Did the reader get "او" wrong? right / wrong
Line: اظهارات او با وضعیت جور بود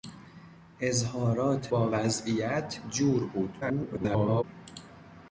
wrong